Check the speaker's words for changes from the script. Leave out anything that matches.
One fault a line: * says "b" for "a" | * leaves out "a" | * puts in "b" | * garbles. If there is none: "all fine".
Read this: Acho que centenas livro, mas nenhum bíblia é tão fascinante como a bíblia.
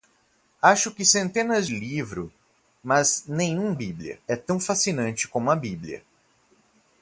all fine